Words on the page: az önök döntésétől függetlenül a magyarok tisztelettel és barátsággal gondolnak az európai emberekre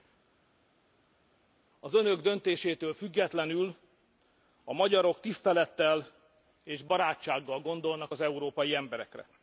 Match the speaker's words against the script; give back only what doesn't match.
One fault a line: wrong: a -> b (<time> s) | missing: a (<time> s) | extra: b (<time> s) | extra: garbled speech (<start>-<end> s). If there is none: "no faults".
no faults